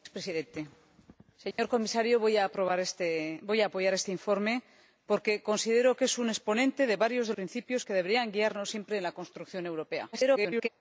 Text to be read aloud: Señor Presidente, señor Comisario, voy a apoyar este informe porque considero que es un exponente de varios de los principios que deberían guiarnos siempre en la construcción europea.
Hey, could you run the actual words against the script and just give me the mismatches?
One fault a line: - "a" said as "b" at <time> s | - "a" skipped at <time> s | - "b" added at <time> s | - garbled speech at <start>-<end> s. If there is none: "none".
- "los" skipped at 7.3 s
- garbled speech at 10.1-10.7 s